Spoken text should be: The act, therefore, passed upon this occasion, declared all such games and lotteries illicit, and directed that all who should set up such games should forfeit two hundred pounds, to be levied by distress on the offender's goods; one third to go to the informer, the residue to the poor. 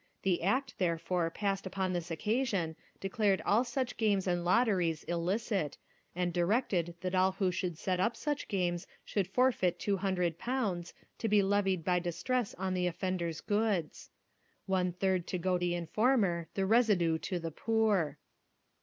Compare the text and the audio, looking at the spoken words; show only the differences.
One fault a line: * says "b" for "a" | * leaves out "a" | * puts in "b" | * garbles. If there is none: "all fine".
* leaves out "to"